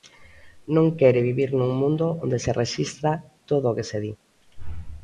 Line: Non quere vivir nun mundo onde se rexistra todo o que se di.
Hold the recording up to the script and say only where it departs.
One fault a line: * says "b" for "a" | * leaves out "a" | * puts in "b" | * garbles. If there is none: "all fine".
all fine